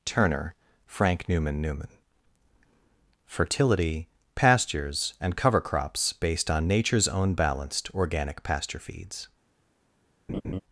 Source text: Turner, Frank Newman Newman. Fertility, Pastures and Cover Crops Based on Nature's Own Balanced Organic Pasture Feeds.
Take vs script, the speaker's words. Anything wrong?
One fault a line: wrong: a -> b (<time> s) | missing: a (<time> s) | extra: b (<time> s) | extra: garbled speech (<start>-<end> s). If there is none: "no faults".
no faults